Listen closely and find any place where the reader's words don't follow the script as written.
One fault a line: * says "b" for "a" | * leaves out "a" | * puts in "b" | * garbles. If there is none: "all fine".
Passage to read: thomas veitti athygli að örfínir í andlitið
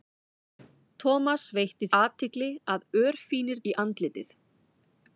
all fine